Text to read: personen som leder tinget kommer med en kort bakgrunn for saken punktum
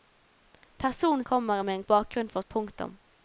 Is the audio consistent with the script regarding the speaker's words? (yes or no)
no